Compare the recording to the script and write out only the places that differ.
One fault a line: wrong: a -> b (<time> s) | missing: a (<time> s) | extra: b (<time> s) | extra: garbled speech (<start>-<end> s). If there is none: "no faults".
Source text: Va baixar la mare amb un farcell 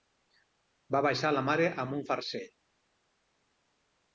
no faults